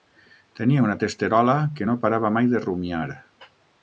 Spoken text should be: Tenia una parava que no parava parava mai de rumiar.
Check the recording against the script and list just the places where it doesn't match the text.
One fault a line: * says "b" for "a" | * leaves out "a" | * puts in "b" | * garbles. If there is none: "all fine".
* says "testerola" for "parava"
* leaves out "parava"